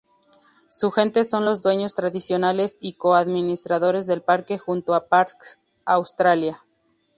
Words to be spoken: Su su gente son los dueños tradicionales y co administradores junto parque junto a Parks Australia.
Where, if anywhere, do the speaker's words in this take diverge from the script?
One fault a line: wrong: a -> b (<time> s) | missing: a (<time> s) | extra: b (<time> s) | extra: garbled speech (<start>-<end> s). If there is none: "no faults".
missing: su (0.9 s)
wrong: junto -> del (4.1 s)